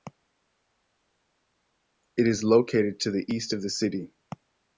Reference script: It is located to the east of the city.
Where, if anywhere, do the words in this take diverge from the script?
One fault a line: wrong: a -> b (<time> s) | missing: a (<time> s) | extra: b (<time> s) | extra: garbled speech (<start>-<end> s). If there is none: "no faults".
no faults